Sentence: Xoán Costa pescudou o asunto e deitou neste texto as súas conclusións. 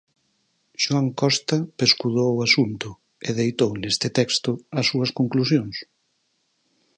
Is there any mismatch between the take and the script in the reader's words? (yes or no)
no